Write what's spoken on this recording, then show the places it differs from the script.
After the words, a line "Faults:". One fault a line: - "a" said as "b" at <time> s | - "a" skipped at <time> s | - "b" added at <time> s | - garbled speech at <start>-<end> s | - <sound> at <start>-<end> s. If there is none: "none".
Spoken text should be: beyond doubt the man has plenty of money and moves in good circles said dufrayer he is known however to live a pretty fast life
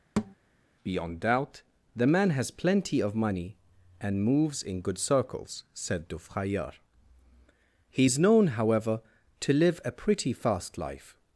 beyond doubt the man has plenty of money and moves in good circles said dufrayer he is known however to live a pretty fast life
Faults:
- thud at 0.2-0.3 s